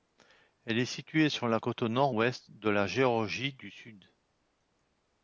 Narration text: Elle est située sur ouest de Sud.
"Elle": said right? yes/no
yes